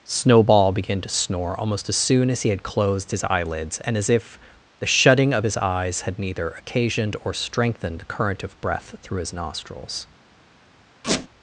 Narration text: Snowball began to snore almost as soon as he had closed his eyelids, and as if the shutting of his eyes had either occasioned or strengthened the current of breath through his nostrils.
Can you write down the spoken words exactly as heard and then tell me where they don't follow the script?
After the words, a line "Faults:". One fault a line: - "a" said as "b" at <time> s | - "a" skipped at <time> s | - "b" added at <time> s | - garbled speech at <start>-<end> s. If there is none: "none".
Snowball began to snore almost as soon as he had closed his eyelids, and as if the shutting of his eyes had neither occasioned or strengthened the current of breath through his nostrils.
Faults:
- "either" said as "neither" at 6.2 s